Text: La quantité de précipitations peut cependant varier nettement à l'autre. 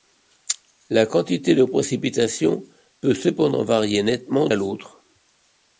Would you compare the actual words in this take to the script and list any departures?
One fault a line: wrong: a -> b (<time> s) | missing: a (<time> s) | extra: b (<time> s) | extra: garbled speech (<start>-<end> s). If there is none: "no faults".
no faults